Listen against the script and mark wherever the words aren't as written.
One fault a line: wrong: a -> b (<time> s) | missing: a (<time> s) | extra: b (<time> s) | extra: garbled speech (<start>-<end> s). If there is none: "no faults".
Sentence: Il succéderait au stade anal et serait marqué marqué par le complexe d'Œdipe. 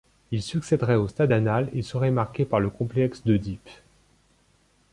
missing: marqué (2.4 s)